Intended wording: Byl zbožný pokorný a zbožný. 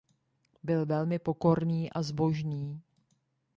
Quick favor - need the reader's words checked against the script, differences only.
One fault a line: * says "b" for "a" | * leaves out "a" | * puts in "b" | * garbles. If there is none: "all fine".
* says "velmi" for "zbožný"